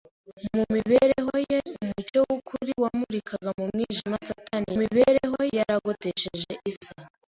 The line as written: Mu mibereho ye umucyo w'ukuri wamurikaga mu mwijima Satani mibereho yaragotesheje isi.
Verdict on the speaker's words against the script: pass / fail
pass